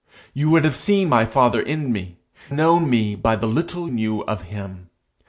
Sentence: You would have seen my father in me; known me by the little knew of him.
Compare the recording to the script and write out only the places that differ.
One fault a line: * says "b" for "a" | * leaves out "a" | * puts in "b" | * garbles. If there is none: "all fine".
all fine